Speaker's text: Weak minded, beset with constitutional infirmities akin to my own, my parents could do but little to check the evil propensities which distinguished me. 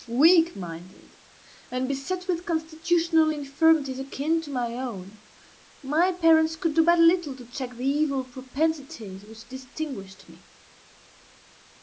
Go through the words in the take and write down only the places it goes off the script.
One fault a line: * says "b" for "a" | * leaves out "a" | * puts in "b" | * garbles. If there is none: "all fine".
* puts in "and"